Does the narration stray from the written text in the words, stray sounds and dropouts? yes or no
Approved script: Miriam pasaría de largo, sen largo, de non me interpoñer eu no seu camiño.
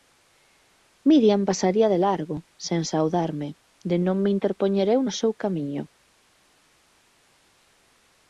yes